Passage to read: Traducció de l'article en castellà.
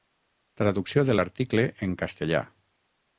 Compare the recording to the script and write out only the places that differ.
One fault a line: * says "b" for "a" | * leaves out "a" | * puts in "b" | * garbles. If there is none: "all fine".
all fine